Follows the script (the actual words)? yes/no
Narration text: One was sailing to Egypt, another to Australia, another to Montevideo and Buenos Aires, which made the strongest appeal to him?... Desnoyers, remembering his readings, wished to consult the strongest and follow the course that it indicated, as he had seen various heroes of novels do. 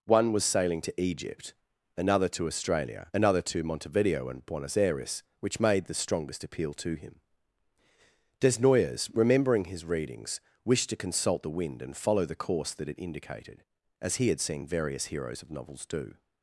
no